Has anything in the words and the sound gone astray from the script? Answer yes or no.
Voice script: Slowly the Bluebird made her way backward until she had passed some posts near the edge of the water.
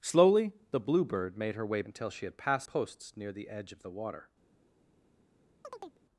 yes